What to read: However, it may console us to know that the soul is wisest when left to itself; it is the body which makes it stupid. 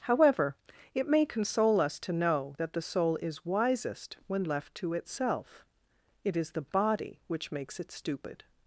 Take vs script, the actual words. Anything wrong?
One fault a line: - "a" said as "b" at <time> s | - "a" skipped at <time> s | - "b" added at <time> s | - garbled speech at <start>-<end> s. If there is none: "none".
none